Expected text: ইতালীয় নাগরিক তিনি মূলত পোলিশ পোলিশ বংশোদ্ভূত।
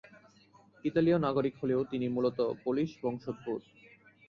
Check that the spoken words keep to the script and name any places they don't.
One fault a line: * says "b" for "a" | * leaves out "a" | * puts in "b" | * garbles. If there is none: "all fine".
* puts in "হলেও"
* leaves out "পোলিশ"